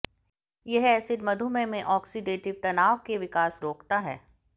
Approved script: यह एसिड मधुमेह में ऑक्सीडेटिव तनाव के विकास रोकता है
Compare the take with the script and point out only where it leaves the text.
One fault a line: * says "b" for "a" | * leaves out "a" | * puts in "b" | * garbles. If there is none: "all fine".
all fine